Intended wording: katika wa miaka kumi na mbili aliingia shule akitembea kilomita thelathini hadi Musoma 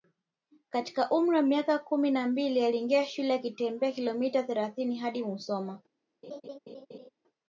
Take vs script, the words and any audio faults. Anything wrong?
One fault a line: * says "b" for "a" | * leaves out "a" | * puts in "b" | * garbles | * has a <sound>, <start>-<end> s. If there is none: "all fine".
* puts in "umri"
* has a laugh, 6.2-7.1 s